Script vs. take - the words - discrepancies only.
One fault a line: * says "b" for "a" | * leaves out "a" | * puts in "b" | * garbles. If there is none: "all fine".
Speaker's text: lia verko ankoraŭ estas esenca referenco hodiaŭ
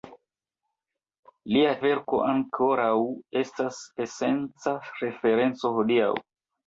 all fine